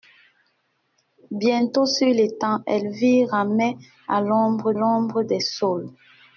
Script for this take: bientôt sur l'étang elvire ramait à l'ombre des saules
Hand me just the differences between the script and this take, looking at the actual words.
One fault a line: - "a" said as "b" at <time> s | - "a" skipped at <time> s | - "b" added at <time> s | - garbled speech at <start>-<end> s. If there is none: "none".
- "l'ombre" added at 4.7 s